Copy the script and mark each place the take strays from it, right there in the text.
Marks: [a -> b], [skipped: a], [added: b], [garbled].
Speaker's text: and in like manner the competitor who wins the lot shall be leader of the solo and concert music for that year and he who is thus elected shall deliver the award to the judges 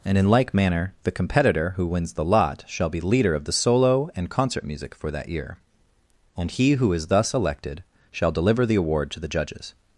and in like manner the competitor who wins the lot shall be leader of the solo and concert music for that year and he who is thus elected shall deliver the award to the judges